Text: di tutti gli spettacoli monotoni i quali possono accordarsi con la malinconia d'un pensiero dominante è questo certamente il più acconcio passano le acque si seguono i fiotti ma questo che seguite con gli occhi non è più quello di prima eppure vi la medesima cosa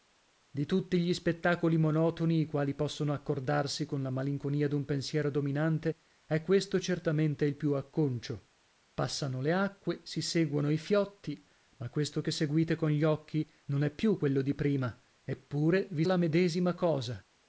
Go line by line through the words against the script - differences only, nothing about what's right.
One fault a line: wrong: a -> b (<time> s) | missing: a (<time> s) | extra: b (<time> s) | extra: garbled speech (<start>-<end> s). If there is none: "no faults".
no faults